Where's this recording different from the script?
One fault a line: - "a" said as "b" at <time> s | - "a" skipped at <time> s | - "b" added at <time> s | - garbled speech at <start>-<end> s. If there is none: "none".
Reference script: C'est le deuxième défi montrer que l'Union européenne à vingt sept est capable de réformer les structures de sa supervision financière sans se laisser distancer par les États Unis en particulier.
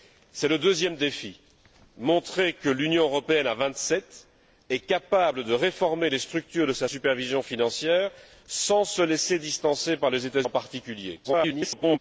- "Unis" skipped at 10.4 s
- garbled speech at 11.2-12.0 s